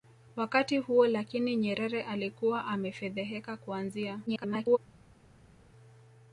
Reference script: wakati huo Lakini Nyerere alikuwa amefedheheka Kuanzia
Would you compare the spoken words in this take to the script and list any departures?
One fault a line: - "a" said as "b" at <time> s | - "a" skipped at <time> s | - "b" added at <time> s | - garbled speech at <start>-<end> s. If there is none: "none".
- garbled speech at 4.3-4.8 s